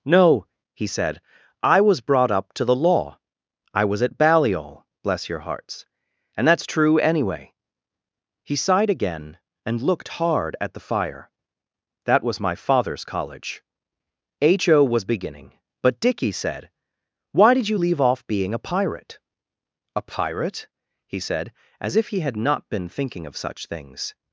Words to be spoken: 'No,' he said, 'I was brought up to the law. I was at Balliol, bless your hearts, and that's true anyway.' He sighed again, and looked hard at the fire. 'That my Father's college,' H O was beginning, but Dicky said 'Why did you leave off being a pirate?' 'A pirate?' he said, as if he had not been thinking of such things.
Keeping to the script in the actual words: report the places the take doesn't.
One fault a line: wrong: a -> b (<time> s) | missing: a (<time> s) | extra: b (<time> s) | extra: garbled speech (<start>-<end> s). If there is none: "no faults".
extra: was (12.2 s)